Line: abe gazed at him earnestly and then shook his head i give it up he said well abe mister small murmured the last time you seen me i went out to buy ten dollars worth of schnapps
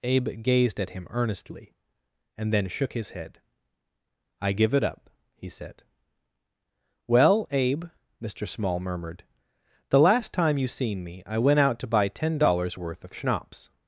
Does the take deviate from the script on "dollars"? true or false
false